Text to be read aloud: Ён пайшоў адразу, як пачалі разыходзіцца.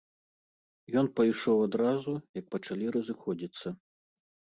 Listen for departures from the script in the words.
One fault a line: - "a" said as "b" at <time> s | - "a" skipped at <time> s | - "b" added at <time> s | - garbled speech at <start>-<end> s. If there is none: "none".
none